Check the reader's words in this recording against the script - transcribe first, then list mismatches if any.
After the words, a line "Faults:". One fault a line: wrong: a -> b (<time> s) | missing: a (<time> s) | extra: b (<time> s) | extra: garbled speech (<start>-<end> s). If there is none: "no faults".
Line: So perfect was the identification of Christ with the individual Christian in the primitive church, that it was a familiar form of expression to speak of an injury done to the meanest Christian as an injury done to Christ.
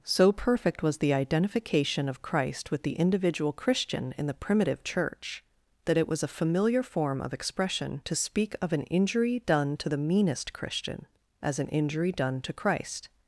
So perfect was the identification of Christ with the individual Christian in the primitive church, that it was a familiar form of expression to speak of an injury done to the meanest Christian as an injury done to Christ.
Faults:
no faults